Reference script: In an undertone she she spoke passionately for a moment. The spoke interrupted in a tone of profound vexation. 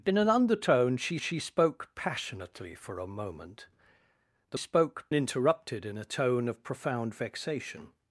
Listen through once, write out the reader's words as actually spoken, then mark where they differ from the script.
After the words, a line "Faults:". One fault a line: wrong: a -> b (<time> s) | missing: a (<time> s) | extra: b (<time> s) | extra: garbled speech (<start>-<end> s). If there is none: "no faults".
In an undertone she she spoke passionately for a moment. The spoke interrupted in a tone of profound vexation.
Faults:
no faults